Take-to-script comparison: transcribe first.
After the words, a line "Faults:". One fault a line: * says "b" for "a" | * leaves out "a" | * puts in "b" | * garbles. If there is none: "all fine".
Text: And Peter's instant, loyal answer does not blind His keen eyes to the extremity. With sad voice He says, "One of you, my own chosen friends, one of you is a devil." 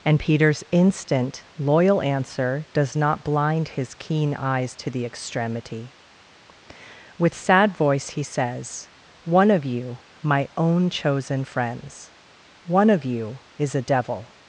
And Peter's instant, loyal answer does not blind His keen eyes to the extremity. With sad voice He says, "One of you, my own chosen friends, one of you is a devil."
Faults:
all fine